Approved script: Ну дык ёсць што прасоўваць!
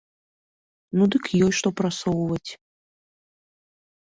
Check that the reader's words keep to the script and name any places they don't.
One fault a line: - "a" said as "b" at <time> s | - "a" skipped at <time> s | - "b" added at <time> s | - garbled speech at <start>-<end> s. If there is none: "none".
none